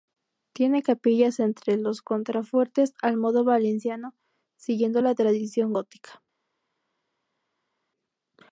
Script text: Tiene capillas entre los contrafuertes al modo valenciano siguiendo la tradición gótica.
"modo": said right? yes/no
yes